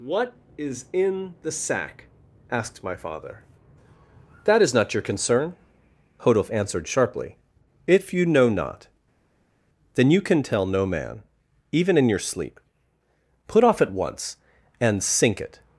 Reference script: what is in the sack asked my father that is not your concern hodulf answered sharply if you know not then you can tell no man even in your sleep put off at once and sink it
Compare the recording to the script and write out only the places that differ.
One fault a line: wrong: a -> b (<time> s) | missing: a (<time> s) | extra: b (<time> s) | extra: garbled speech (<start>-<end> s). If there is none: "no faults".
no faults